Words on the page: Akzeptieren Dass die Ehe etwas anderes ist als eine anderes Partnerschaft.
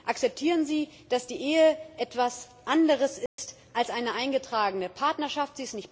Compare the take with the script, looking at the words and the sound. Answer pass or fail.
fail